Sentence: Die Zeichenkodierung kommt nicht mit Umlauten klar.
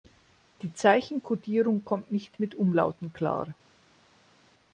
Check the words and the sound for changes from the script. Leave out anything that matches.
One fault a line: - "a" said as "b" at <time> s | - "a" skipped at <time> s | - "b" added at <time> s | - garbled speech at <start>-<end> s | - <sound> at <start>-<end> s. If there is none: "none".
none